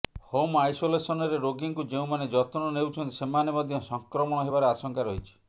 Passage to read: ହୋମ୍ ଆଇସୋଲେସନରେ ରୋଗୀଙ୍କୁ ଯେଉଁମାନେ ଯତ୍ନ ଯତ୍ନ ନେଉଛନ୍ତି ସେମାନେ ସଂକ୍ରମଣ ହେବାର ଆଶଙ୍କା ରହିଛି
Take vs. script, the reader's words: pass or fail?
fail